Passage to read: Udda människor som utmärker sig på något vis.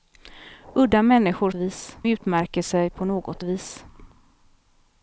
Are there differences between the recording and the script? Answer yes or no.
yes